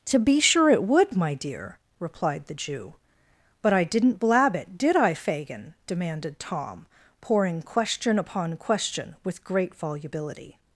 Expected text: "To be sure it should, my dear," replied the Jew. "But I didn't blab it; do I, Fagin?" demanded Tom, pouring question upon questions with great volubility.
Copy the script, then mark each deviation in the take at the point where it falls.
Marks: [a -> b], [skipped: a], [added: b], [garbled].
"To be sure it [should, -> would] my dear," replied the Jew. "But I didn't blab it; [do -> did] I, Fagin?" demanded Tom, pouring question upon [questions -> question] with great volubility.